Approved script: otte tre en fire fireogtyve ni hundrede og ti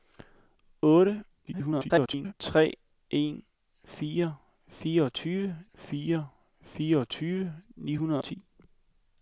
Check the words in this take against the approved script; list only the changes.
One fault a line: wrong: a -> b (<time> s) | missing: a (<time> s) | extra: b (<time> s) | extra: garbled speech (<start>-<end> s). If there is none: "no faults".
extra: garbled speech (1.5-2.3 s)
extra: fire fireogtyve (5.7 s)
missing: og (8.2 s)